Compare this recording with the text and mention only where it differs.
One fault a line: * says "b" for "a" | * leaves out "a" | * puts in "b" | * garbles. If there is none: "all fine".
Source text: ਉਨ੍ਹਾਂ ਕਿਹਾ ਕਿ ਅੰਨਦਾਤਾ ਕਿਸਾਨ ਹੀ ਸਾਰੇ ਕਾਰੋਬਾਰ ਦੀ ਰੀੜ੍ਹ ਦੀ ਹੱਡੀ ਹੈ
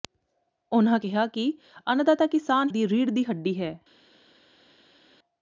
* leaves out "ਹੀ ਸਾਰੇ ਕਾਰੋਬਾਰ"